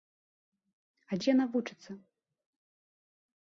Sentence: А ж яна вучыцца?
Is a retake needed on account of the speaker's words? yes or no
no